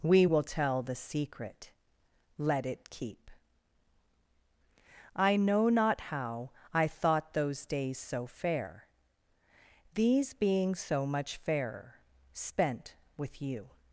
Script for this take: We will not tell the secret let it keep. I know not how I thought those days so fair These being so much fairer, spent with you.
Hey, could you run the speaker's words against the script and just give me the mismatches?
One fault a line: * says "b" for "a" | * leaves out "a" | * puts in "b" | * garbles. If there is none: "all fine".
* leaves out "not"